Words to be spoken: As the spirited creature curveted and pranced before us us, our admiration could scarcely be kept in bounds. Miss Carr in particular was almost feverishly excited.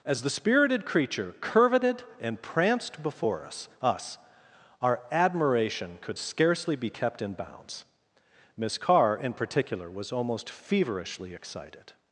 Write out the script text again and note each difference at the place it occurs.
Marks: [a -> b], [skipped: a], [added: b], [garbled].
As the spirited creature curveted and pranced before us us, our admiration could scarcely be kept in bounds. Miss Carr in particular was almost feverishly excited.